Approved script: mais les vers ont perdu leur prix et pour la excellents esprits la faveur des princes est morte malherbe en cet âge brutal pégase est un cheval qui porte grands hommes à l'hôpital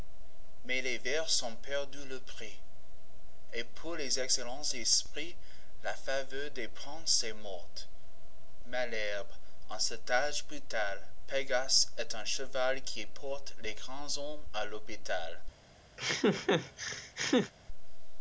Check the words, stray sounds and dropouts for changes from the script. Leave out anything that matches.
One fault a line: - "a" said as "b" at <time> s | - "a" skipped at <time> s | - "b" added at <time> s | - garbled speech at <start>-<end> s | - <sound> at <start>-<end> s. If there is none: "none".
- "la" said as "les" at 4.0 s
- "les" added at 13.6 s
- laugh at 16.0-17.5 s